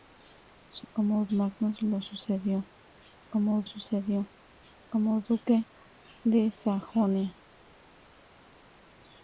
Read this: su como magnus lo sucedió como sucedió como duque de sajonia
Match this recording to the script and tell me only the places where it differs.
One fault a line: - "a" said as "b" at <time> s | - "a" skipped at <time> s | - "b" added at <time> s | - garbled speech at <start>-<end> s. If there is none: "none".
none